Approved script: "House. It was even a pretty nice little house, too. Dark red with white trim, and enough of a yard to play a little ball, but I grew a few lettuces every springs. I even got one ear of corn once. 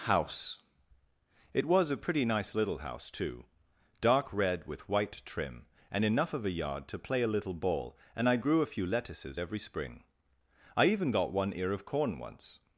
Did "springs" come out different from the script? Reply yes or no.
yes